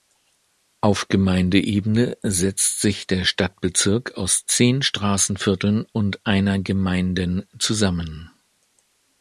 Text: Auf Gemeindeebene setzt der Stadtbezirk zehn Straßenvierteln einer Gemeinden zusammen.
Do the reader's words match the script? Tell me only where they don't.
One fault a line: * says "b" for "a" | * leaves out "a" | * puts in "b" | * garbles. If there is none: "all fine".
* puts in "sich"
* puts in "aus"
* puts in "und"